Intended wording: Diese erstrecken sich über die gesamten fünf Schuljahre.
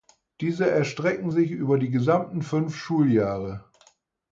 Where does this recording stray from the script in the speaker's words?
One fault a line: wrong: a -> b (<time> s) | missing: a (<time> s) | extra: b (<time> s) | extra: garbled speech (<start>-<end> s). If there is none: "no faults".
no faults